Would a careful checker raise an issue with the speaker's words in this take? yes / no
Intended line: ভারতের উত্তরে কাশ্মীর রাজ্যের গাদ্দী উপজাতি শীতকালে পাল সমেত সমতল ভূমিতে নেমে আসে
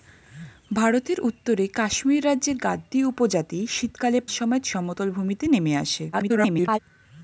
yes